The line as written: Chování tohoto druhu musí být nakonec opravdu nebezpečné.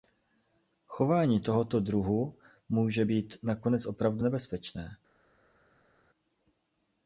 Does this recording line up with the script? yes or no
no